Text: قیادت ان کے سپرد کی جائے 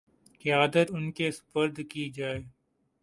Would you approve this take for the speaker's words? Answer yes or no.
yes